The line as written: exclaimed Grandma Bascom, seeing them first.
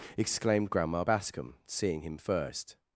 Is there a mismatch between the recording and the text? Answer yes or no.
yes